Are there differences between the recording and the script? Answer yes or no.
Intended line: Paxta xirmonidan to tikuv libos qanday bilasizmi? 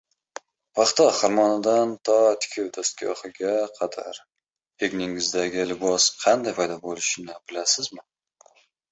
yes